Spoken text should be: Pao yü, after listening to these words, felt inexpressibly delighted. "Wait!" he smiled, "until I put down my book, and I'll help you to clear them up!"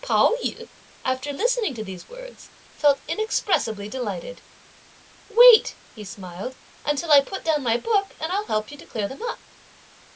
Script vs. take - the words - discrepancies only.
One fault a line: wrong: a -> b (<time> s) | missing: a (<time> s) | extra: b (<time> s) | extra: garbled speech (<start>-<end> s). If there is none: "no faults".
no faults